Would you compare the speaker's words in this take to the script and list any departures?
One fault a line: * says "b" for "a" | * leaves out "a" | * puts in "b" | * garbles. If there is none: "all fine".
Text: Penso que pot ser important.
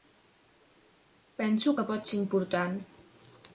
all fine